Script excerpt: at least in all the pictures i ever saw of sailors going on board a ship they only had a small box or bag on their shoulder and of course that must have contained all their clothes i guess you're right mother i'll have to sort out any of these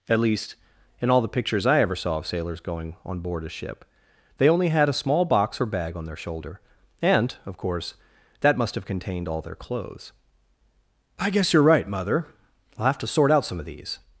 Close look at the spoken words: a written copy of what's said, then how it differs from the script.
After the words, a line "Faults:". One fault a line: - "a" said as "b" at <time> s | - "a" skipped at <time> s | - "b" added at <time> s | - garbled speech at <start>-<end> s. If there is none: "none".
at least in all the pictures i ever saw of sailors going on board a ship they only had a small box or bag on their shoulder and of course that must have contained all their clothes i guess you're right mother i'll have to sort out some of these
Faults:
- "any" said as "some" at 13.4 s